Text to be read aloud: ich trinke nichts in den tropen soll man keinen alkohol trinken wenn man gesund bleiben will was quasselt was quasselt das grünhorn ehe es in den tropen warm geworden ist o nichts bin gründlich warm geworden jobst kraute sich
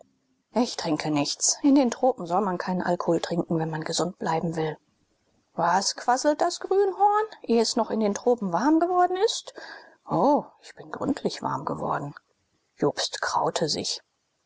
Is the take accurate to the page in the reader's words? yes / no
no